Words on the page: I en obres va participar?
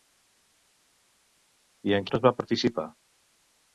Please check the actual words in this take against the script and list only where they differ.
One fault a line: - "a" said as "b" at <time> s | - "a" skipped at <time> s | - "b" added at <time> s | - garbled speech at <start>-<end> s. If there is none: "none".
none